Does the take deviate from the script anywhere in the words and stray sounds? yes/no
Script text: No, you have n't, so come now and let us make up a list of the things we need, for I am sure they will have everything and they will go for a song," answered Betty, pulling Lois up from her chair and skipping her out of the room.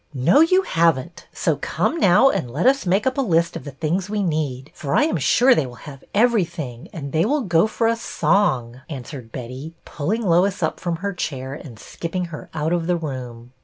no